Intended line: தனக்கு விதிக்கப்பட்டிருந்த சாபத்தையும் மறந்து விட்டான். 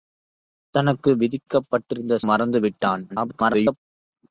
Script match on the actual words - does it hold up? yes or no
no